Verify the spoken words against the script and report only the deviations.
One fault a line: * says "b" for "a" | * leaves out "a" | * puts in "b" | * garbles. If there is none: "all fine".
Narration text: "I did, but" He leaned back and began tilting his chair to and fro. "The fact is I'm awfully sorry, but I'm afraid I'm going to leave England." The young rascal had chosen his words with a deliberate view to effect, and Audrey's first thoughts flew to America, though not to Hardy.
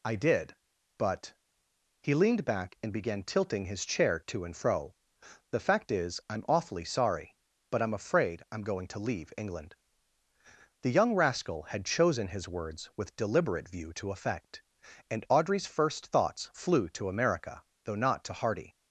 * leaves out "a"